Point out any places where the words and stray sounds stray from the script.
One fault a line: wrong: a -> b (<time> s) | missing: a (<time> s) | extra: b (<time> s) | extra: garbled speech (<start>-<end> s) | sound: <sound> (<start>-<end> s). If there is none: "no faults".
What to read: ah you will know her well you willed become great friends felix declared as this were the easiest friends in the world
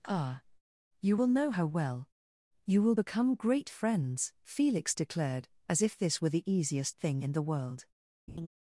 wrong: willed -> will (2.8 s)
extra: if (5.8 s)
wrong: friends -> thing (7.0 s)
sound: laugh (8.3-8.5 s)